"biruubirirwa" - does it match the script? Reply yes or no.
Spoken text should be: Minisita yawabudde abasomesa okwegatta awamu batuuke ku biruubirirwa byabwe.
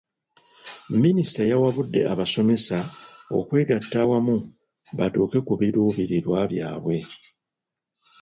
yes